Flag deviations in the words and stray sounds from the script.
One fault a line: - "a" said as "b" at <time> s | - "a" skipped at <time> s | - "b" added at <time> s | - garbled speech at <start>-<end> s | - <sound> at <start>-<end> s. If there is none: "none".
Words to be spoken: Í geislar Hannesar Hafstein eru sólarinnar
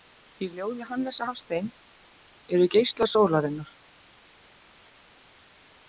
- "geislar" said as "ljóði" at 0.5 s
- "geislar" added at 2.8 s